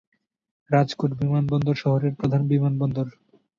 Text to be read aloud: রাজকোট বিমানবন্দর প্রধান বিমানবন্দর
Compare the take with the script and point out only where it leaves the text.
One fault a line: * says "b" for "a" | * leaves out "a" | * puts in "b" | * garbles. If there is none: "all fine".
* puts in "শহরের"